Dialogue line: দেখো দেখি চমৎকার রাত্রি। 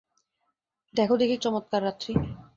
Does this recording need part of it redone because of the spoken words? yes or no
no